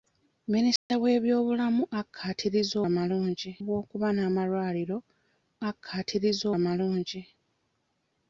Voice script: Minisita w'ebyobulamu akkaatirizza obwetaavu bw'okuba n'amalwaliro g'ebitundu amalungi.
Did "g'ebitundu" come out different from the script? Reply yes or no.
yes